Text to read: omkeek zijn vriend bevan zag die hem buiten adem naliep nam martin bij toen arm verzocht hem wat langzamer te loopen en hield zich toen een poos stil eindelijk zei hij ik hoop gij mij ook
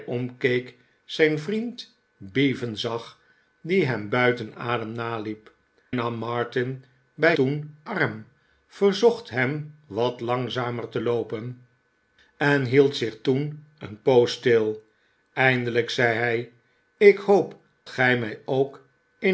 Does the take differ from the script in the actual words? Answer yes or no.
no